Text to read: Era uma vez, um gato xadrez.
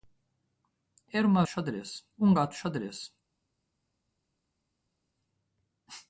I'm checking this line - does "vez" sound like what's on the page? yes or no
no